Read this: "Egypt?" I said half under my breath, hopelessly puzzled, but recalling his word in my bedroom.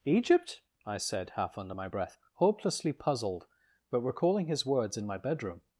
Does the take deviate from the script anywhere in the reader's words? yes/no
yes